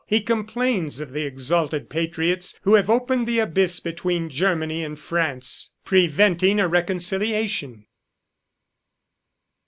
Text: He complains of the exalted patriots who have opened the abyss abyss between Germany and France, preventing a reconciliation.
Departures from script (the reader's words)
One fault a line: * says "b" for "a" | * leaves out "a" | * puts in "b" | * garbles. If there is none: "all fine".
* leaves out "abyss"